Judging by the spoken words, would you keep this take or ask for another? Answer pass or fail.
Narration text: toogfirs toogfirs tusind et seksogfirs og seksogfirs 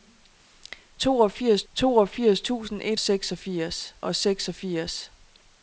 pass